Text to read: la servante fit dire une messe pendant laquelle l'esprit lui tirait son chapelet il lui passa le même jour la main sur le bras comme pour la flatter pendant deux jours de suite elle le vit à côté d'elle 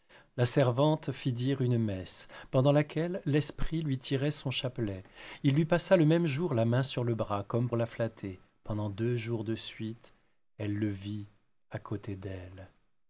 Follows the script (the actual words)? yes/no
no